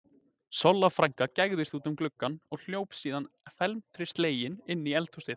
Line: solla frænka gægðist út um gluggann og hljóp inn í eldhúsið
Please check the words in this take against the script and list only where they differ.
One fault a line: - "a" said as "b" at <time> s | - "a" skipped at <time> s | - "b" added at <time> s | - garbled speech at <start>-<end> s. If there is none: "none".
- "síðan felmtri slegin" added at 3.0 s